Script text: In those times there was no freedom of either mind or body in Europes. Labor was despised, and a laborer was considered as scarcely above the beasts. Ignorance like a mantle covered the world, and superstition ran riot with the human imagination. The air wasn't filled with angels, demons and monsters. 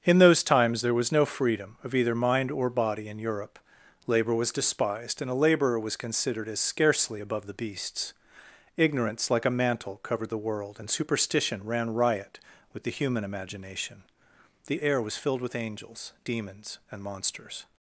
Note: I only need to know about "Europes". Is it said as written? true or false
false